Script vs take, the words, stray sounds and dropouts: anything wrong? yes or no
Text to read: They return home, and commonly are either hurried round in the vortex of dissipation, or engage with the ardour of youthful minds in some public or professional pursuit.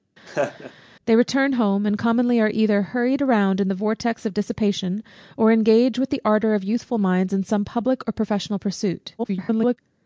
yes